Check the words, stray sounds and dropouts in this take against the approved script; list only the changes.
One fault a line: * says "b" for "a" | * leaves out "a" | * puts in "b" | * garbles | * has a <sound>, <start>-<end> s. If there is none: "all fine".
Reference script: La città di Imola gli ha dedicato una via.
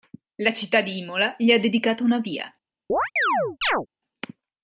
* has a chirp, 2.9-3.9 s